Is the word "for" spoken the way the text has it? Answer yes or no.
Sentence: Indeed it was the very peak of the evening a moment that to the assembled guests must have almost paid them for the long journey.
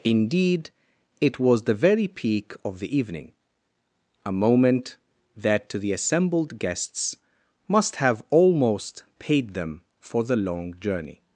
yes